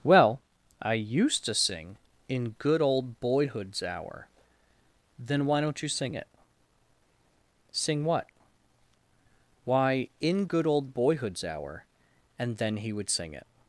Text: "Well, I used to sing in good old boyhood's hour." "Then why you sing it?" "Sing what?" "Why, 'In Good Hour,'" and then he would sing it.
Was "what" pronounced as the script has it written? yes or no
yes